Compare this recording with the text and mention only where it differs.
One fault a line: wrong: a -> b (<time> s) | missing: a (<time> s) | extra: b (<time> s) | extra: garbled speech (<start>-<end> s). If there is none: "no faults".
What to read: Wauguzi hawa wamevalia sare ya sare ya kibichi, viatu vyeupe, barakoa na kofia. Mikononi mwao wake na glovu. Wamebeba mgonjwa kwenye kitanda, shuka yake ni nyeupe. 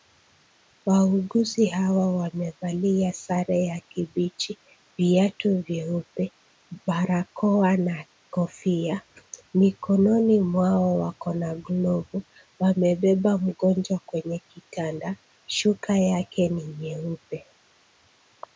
missing: sare ya (3.8 s)
wrong: wake -> wako (11.0 s)